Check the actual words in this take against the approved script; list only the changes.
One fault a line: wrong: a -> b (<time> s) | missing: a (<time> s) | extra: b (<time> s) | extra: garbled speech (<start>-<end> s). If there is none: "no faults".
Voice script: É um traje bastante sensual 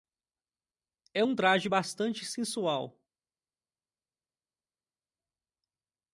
no faults